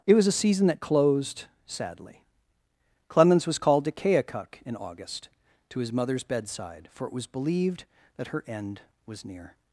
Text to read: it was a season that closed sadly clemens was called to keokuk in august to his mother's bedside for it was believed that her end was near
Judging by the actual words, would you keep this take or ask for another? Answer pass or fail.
pass